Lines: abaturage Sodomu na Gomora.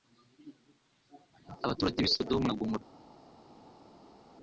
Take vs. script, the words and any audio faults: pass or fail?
fail